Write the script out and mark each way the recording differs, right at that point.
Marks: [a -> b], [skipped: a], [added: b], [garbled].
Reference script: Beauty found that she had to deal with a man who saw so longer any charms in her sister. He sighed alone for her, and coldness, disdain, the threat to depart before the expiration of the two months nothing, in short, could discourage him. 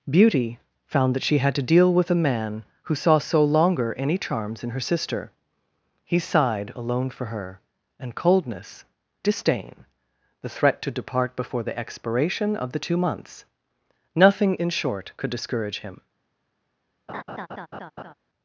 Beauty found that she had to deal with a man who saw so longer any charms in her sister. He sighed alone for her, and coldness, disdain, the threat to depart before the expiration of the two months nothing, in short, could discourage him.